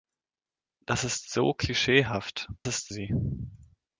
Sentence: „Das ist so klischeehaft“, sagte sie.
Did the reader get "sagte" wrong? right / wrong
wrong